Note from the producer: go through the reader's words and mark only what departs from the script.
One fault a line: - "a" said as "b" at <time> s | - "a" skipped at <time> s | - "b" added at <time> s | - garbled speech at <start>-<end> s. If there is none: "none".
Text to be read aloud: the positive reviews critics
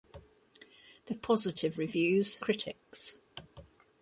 none